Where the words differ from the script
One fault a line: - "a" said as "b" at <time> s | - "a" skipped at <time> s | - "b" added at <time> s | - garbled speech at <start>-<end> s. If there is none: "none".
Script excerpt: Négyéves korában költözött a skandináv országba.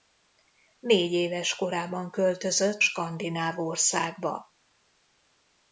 - "a" skipped at 2.9 s